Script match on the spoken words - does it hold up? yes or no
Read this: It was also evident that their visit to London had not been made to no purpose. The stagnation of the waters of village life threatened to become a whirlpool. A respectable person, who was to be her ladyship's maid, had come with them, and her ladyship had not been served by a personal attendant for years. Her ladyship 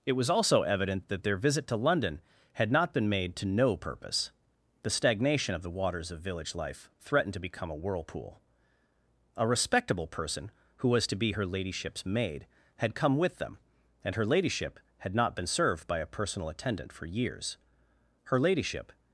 yes